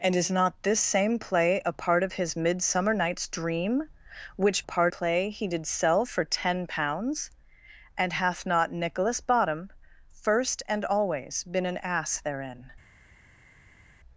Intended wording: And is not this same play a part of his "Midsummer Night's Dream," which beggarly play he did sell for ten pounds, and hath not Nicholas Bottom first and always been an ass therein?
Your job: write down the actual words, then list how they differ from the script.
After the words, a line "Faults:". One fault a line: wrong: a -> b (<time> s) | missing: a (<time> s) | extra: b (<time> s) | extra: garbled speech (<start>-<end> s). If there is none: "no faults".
And is not this same play a part of his "Midsummer Night's Dream," which part play he did sell for ten pounds, and hath not Nicholas Bottom first and always been an ass therein?
Faults:
wrong: beggarly -> part (4.6 s)